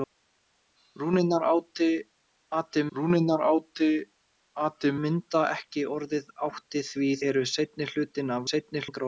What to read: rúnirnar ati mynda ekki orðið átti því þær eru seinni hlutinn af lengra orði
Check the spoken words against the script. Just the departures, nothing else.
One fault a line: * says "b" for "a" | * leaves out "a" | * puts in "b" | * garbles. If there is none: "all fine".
* puts in "rúnirnar ati"
* leaves out "þær"
* says "seinni" for "lengra"